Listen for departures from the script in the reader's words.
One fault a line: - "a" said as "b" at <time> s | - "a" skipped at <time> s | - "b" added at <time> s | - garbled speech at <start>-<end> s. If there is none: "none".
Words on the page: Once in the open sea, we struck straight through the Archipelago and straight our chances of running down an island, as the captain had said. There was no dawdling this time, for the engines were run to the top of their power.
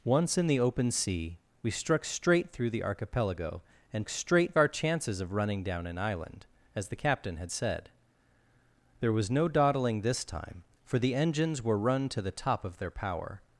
none